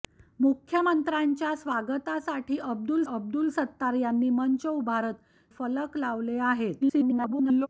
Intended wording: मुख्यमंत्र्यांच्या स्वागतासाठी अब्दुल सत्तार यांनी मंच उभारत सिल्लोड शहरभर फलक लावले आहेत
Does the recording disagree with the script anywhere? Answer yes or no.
yes